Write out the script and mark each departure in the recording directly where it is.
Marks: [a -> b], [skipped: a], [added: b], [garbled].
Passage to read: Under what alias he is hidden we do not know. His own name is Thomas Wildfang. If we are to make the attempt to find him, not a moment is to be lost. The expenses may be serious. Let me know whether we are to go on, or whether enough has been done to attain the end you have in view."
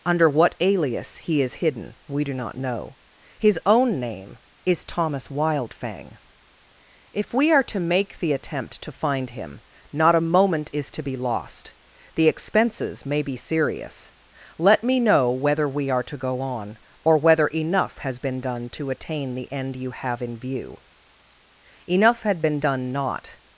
Under what alias he is hidden we do not know. His own name is Thomas Wildfang. If we are to make the attempt to find him, not a moment is to be lost. The expenses may be serious. Let me know whether we are to go on, or whether enough has been done to attain the end you have in view." [added: Enough had been done not]